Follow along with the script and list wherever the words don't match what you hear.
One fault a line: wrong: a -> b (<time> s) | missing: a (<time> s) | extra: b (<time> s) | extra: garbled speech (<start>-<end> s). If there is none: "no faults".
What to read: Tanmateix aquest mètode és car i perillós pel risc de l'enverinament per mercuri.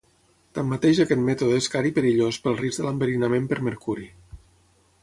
no faults